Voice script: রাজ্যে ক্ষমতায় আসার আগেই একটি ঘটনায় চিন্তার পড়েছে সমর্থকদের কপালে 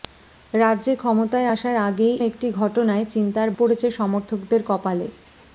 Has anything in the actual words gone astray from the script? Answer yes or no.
no